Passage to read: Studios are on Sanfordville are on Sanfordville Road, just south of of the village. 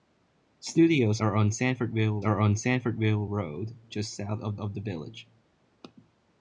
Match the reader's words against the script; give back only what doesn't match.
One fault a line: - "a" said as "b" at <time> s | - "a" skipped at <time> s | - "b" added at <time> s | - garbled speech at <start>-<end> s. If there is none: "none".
none